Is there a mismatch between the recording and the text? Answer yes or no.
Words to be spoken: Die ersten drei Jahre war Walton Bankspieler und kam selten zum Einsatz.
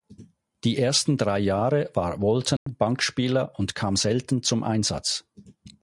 no